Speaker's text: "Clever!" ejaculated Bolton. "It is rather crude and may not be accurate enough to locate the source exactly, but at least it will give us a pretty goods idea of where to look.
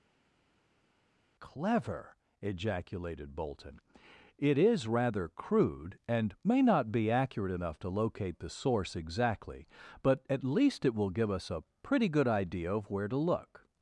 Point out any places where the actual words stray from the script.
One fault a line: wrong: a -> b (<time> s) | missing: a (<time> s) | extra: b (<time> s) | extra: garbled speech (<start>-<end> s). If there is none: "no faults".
wrong: goods -> good (12.1 s)